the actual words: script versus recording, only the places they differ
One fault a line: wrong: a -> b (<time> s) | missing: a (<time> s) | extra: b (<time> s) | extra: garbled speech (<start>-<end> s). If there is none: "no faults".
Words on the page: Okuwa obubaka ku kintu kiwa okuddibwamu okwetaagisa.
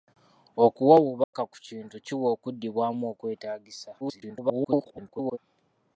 extra: garbled speech (4.0-5.4 s)